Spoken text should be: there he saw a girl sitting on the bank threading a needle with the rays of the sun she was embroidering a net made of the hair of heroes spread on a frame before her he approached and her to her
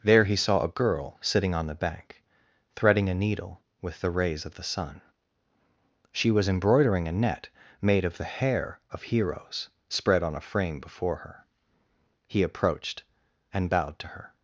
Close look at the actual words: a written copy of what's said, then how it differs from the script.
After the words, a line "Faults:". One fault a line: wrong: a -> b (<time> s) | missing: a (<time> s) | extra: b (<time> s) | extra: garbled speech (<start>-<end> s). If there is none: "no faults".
there he saw a girl sitting on the bank threading a needle with the rays of the sun she was embroidering a net made of the hair of heroes spread on a frame before her he approached and bowed to her
Faults:
wrong: her -> bowed (13.7 s)